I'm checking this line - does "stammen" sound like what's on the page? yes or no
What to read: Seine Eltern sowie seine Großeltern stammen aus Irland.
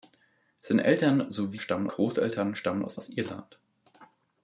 yes